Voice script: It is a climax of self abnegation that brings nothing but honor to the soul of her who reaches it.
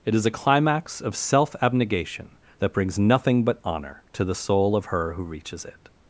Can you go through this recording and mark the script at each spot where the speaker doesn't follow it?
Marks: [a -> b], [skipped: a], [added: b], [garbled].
It is a climax of self abnegation that brings nothing but honor to the soul of her who reaches it.